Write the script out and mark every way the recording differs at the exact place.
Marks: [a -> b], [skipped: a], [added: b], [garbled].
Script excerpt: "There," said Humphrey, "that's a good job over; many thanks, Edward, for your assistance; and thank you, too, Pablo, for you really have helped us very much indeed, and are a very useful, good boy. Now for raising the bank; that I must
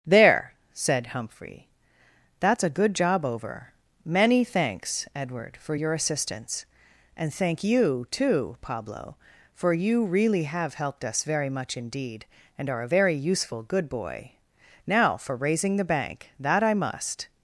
"There," said Humphrey, "that's a good job over; many thanks, Edward, for your assistance; and thank you, too, Pablo, for you really have helped us very much indeed, and are a very useful, good boy. Now for raising the bank; that I must